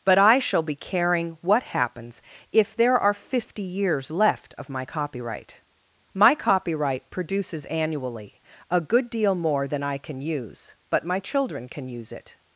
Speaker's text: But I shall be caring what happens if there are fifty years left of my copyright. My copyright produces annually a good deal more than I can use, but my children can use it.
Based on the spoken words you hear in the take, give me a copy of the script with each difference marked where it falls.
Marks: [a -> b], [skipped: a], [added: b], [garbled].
But I shall be caring what happens if there are fifty years left of my copyright. My copyright produces annually a good deal more than I can use, but my children can use it.